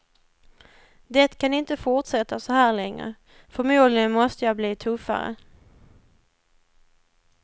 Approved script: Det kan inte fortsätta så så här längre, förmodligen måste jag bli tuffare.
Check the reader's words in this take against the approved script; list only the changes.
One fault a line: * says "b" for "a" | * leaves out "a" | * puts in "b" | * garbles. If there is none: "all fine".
* leaves out "så"